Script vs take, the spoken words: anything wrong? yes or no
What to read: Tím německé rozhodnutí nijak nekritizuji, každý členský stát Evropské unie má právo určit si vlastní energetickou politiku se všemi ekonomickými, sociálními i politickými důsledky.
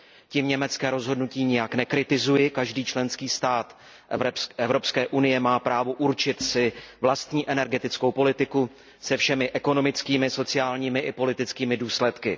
no